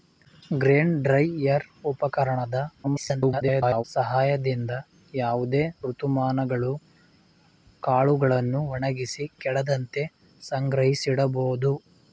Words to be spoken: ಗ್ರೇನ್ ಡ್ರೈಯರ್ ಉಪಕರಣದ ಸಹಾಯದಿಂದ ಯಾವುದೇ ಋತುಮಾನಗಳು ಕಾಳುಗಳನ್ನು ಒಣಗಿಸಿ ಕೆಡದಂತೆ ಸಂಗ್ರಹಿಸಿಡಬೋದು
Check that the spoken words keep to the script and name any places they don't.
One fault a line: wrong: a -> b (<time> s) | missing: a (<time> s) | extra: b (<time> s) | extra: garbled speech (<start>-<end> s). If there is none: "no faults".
extra: garbled speech (2.8-3.8 s)